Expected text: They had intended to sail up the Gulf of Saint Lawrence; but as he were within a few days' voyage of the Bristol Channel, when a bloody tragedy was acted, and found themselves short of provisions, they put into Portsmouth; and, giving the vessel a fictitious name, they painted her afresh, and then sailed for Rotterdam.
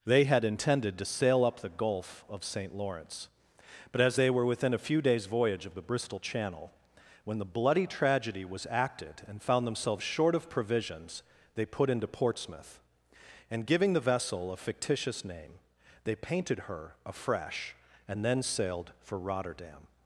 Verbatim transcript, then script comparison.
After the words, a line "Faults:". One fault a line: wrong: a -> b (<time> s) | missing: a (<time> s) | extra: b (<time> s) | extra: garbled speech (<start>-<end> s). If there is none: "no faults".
They had intended to sail up the Gulf of Saint Lawrence; but as they were within a few days' voyage of the Bristol Channel, when the bloody tragedy was acted, and found themselves short of provisions, they put into Portsmouth; and, giving the vessel a fictitious name, they painted her afresh, and then sailed for Rotterdam.
Faults:
wrong: he -> they (4.1 s)
wrong: a -> the (7.4 s)